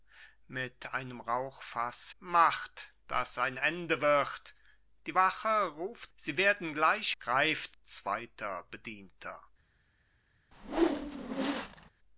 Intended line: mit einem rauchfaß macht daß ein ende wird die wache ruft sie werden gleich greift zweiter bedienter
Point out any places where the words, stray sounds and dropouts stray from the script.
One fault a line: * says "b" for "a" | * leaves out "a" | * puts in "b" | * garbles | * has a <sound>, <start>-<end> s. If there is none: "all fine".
* has a whoosh, 10.5-11.9 s